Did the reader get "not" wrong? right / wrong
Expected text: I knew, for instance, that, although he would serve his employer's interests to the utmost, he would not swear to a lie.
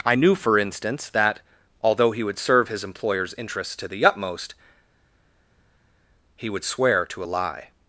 wrong